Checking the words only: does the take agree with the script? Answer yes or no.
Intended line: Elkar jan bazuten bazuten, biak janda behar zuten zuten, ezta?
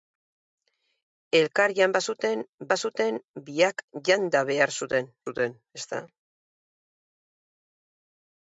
yes